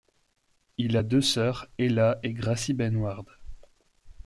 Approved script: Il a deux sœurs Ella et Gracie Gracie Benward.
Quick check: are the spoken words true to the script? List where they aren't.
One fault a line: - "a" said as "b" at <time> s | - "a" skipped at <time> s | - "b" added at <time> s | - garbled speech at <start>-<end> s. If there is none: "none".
- "Gracie" skipped at 2.7 s